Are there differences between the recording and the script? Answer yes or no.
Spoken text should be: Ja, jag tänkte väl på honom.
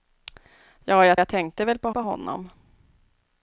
yes